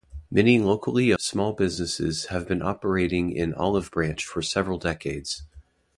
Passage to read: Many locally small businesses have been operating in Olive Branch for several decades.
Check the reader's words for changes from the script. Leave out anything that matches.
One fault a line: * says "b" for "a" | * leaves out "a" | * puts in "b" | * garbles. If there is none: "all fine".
all fine